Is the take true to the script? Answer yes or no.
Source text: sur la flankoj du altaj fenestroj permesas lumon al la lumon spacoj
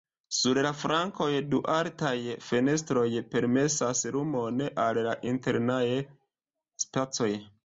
no